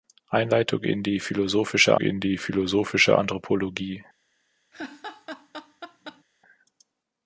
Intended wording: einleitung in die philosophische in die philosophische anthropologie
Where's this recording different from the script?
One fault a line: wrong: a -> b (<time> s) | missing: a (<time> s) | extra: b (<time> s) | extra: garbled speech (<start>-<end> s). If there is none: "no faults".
no faults